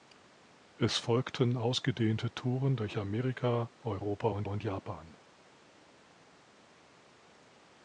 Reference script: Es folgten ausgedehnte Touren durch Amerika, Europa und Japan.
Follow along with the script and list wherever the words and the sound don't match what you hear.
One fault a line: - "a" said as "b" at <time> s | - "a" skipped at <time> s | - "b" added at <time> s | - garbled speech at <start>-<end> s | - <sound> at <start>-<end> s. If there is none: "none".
- "und" added at 4.4 s